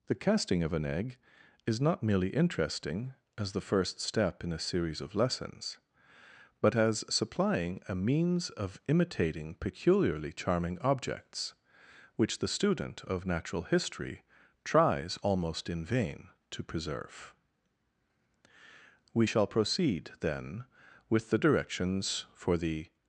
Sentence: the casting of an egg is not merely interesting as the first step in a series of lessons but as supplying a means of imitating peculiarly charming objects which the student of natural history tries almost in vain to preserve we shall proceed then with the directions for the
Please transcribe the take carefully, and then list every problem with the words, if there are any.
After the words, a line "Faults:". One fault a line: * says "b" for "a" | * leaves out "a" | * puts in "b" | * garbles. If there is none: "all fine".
the casting of an egg is not merely interesting as the first step in a series of lessons but as supplying a means of imitating peculiarly charming objects which the student of natural history tries almost in vain to preserve we shall proceed then with the directions for the
Faults:
all fine